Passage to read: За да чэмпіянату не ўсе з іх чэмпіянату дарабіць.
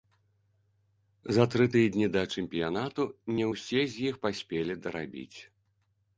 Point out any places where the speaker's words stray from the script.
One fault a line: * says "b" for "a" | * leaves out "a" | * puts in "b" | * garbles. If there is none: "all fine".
* puts in "тры тыдні"
* says "паспелі" for "чэмпіянату"